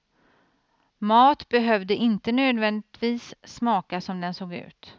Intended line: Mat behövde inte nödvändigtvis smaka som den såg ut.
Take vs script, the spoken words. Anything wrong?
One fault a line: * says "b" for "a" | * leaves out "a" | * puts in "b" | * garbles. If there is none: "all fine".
all fine